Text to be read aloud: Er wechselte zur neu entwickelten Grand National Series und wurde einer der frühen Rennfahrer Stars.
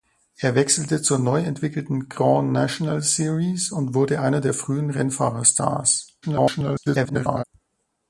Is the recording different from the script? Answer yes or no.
yes